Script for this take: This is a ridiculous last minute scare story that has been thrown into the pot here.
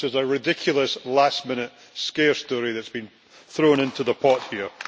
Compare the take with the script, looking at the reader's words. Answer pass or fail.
pass